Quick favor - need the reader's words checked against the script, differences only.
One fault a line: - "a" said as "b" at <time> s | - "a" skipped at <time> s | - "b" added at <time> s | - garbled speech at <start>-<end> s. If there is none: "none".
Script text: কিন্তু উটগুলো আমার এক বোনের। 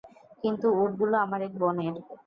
none